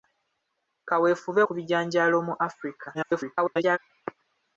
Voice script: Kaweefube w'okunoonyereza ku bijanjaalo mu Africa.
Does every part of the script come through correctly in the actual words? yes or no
no